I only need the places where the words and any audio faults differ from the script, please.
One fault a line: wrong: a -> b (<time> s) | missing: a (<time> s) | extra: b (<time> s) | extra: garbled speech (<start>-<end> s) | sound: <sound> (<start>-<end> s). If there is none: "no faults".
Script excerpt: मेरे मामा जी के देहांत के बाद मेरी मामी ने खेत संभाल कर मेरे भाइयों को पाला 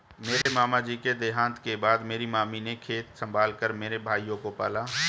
sound: dropout (0.4-0.5 s)